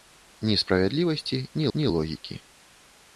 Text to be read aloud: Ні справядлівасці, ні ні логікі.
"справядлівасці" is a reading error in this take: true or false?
false